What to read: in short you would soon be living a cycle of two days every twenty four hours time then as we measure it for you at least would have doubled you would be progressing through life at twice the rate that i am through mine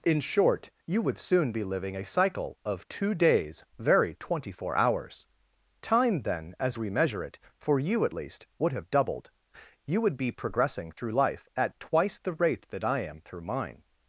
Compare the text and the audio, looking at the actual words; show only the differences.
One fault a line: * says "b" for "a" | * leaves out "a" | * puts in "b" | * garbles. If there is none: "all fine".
* says "very" for "every"